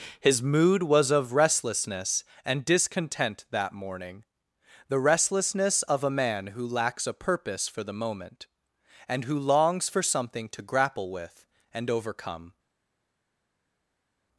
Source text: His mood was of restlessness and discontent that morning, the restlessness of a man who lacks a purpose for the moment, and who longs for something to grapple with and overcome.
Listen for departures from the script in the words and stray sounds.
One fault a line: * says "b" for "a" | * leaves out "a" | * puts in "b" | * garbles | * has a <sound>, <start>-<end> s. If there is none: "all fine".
all fine